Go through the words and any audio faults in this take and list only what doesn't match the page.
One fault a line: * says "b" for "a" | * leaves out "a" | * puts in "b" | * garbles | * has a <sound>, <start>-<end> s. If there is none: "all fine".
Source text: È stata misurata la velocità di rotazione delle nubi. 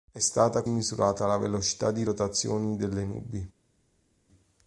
all fine